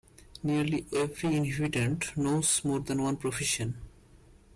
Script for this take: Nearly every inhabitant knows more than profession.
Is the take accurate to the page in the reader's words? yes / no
no